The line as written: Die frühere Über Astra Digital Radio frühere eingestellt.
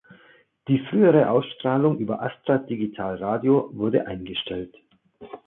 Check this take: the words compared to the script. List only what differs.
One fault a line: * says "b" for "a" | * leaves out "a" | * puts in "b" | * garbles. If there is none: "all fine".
* puts in "Ausstrahlung"
* says "wurde" for "frühere"